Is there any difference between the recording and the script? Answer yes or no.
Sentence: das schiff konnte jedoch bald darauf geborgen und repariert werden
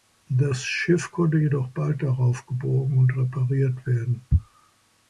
no